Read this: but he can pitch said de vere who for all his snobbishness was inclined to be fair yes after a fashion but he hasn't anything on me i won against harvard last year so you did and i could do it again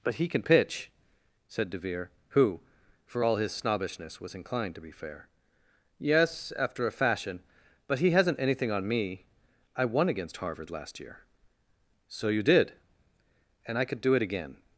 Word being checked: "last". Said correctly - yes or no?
yes